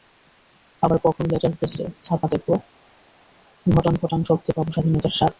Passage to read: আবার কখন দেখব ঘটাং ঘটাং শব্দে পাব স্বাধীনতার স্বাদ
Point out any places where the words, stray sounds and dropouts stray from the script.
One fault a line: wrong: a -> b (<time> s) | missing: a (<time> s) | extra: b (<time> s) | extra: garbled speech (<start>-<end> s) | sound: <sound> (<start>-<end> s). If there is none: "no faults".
extra: লেটার প্রেসে ছাপা (1.3 s)